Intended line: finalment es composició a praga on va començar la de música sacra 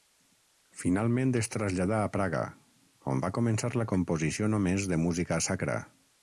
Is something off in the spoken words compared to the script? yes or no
yes